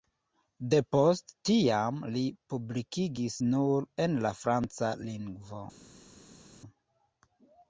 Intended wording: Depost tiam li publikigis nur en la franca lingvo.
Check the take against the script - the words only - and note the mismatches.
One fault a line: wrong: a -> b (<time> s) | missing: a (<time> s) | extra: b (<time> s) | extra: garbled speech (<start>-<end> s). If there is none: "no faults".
no faults